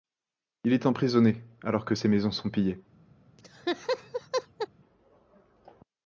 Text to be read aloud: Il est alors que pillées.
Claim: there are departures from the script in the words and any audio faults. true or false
true